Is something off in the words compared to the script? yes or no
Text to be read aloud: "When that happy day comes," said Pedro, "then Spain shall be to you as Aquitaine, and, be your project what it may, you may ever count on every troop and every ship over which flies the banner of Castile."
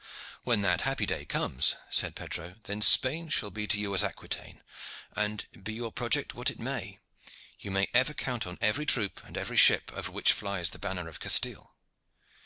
no